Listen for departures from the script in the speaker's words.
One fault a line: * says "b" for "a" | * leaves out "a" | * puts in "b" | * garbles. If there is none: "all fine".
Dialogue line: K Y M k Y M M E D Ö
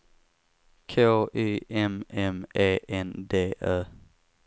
* leaves out "k Y"
* says "E N" for "M E"